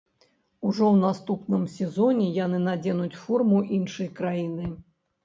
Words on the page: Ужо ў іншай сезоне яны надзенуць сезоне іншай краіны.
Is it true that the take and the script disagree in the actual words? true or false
true